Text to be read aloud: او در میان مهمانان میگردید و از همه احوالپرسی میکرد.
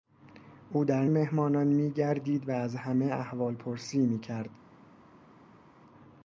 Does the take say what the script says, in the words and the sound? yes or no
no